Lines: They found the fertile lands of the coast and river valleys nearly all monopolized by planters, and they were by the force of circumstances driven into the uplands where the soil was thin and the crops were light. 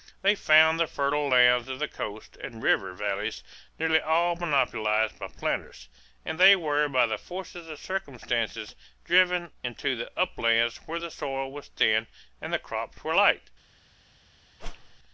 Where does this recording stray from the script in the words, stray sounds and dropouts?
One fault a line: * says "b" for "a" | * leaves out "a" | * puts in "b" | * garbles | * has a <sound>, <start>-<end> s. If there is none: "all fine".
* has a whoosh, 14.6-15.0 s